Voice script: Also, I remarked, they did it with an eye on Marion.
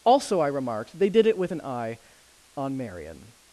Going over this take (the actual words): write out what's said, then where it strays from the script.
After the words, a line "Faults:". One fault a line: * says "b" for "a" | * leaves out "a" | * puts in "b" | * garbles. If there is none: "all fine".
Also, I remarked, they did it with an eye on Marion.
Faults:
all fine